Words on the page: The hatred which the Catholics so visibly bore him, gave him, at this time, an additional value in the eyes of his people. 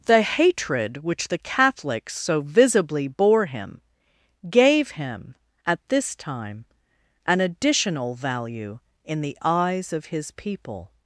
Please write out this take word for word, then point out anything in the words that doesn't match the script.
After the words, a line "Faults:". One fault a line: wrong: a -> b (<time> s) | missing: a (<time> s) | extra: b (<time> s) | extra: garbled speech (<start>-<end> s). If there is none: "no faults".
The hatred which the Catholics so visibly bore him, gave him, at this time, an additional value in the eyes of his people.
Faults:
no faults